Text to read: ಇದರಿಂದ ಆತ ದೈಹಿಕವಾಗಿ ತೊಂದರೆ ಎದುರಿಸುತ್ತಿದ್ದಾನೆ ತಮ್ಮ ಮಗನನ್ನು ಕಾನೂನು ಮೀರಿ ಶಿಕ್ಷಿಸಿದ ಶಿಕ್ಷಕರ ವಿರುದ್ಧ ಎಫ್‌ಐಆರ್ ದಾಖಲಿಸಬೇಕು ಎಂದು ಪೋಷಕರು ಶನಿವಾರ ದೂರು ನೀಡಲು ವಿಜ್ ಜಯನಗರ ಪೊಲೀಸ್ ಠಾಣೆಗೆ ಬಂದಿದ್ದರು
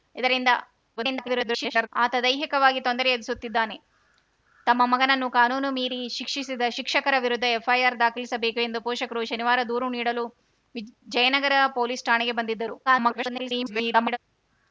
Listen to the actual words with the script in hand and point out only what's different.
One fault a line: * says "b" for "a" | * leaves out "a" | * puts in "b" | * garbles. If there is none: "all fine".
* garbles
* garbles